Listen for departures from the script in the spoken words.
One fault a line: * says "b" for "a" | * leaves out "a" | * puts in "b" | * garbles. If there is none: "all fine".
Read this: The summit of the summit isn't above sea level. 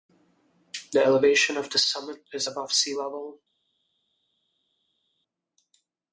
* says "elevation" for "summit"
* says "is" for "isn't"